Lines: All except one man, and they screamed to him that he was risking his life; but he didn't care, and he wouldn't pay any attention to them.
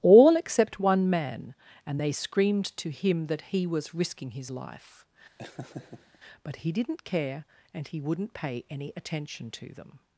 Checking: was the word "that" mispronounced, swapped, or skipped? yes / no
no